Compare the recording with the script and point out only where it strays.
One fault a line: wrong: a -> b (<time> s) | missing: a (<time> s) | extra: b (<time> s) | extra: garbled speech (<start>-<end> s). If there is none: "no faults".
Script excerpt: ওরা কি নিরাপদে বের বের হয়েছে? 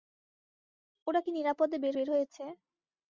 no faults